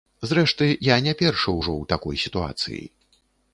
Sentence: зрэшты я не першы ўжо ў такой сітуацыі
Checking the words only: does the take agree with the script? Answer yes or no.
yes